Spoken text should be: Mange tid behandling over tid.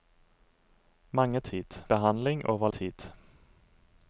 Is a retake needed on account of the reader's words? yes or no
no